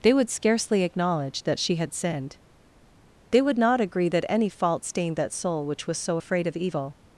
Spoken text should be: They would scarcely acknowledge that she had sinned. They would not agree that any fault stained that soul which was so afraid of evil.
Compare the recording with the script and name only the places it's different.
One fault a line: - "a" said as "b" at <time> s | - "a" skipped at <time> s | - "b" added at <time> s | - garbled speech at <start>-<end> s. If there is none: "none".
none